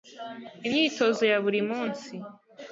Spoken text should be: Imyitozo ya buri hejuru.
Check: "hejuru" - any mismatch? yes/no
yes